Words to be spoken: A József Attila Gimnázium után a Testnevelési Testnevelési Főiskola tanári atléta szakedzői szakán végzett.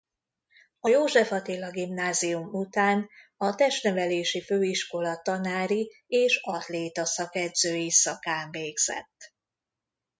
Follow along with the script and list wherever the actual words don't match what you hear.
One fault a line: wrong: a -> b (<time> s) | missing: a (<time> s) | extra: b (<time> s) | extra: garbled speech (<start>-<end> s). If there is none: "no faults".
missing: Testnevelési (4.4 s)
extra: és (6.1 s)